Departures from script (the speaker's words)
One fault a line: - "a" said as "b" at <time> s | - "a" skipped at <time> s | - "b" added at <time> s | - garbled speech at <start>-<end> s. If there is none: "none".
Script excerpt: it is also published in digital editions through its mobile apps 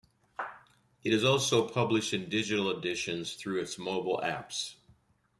none